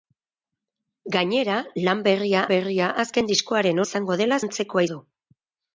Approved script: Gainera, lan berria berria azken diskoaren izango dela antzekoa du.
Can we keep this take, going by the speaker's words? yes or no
yes